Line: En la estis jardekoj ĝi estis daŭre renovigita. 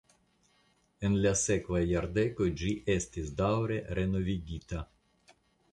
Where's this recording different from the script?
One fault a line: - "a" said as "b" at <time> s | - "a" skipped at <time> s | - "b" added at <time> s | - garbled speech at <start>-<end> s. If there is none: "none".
- "estis" said as "sekvaj" at 1.4 s